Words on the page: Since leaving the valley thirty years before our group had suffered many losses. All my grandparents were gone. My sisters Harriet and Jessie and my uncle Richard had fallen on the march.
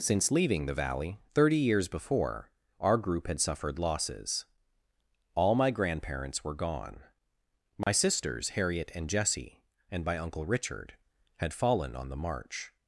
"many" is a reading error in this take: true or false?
true